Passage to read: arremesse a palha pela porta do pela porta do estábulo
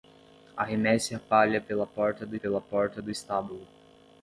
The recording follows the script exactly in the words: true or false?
true